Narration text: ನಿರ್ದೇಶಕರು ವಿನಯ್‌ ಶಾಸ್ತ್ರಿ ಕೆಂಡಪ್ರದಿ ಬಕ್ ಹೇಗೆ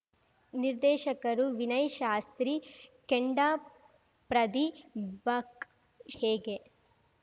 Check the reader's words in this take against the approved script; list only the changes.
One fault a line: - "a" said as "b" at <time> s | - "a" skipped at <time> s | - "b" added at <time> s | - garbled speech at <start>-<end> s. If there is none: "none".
none